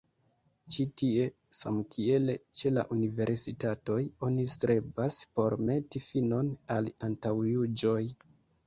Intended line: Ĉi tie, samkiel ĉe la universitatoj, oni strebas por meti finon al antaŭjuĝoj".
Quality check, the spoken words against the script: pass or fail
pass